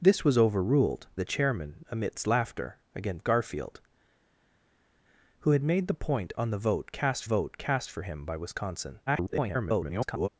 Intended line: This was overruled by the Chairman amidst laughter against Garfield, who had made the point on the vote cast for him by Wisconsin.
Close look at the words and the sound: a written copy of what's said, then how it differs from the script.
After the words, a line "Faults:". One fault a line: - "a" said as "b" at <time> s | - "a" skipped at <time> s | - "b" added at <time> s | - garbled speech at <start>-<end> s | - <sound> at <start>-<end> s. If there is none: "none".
This was overruled the Chairman amidst laughter against Garfield, who had made the point on the vote cast vote cast for him by Wisconsin. [garbled]
Faults:
- "by" skipped at 1.1 s
- "vote cast" added at 7.2 s
- garbled speech at 9.1-10.3 s